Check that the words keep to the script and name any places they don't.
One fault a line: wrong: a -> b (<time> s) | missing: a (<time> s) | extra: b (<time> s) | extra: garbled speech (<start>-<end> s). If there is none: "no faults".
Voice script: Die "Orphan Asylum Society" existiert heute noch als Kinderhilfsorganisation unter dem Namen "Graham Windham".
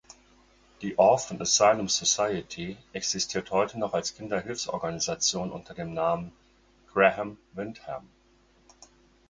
no faults